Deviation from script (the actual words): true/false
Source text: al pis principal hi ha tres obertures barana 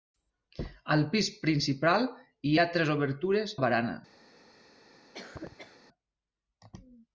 false